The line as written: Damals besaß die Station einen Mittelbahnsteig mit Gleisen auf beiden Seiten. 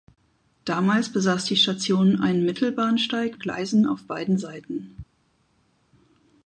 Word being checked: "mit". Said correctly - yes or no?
no